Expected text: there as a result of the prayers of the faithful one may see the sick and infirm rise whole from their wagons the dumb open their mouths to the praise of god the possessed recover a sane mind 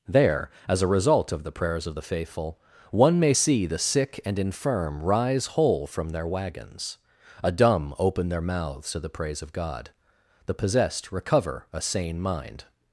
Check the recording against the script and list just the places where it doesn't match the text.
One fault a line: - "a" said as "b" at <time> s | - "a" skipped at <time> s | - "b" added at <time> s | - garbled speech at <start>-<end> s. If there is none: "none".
- "the" said as "a" at 7.4 s